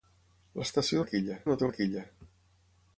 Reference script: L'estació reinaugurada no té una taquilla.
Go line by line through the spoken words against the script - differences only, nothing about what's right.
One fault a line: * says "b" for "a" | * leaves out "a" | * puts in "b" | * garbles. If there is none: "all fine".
* says "taquilla" for "reinaugurada"
* leaves out "una"